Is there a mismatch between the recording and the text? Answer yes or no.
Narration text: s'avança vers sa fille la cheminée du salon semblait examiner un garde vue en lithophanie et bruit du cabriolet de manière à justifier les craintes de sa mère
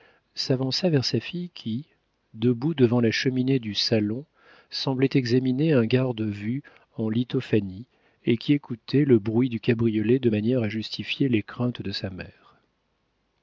yes